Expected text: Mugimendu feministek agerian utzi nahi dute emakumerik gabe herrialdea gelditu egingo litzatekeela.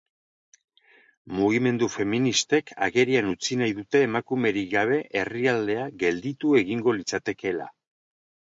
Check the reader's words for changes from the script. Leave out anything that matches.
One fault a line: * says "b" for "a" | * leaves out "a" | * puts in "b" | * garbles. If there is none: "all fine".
all fine